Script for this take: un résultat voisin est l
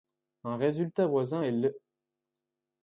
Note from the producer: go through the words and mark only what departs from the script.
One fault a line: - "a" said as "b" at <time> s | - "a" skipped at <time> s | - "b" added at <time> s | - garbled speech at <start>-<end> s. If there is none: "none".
none